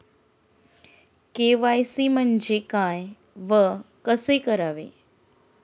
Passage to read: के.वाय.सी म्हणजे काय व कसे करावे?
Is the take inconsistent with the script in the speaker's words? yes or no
no